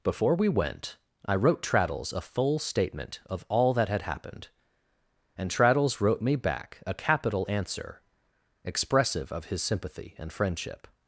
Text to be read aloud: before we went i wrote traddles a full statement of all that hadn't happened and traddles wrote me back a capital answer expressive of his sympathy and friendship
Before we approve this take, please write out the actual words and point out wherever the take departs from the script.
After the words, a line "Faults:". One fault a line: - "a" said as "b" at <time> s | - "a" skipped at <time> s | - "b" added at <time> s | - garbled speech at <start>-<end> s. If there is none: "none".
before we went i wrote traddles a full statement of all that had happened and traddles wrote me back a capital answer expressive of his sympathy and friendship
Faults:
- "hadn't" said as "had" at 3.9 s